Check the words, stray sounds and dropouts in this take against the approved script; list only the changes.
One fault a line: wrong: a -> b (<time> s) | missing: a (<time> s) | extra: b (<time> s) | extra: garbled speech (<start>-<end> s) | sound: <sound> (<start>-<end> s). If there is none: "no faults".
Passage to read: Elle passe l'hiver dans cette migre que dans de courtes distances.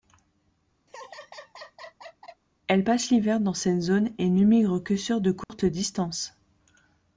sound: laugh (0.9-2.4 s)
extra: zone et ne (3.8 s)
wrong: dans -> sur (5.0 s)
sound: dropout (5.4-5.5 s)